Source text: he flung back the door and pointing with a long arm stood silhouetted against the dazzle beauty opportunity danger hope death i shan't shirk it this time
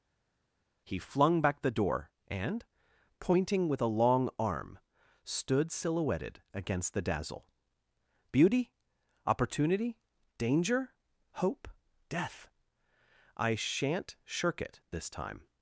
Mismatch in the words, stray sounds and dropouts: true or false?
false